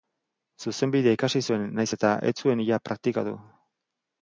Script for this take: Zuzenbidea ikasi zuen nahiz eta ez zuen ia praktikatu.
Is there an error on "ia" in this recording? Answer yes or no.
no